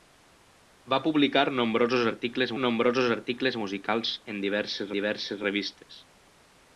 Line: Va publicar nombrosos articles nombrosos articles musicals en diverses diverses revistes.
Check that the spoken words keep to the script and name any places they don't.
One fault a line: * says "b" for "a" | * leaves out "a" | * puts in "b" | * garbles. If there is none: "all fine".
all fine